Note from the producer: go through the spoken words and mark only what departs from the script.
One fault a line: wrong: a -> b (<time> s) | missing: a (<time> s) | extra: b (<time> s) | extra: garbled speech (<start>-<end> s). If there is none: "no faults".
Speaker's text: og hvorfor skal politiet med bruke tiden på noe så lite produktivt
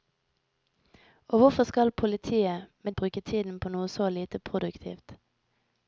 no faults